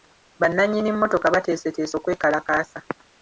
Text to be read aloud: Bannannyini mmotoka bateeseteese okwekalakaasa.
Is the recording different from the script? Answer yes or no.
no